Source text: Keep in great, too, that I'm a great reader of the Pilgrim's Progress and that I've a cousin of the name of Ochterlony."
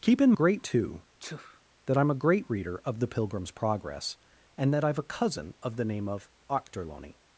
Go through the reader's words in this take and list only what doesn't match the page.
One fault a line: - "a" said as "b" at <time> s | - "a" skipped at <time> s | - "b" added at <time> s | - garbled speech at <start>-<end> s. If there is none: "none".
none